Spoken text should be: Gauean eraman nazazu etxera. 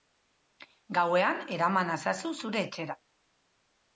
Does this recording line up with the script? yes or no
no